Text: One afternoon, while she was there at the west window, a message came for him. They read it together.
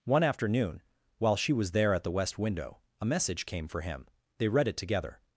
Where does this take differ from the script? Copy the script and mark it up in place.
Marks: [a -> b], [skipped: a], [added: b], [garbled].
One afternoon, while she was there at the west window, a message came for him. They read it together.